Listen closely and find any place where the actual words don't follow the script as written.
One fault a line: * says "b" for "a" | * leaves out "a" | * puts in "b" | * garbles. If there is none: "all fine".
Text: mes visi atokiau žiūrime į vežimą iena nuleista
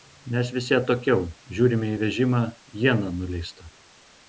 all fine